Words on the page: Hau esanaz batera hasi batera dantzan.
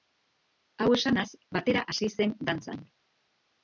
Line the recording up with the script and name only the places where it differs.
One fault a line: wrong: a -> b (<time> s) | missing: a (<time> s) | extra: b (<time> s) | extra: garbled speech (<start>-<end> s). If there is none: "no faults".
wrong: batera -> zen (2.2 s)